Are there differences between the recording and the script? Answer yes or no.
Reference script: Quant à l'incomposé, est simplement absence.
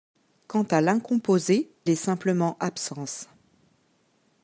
no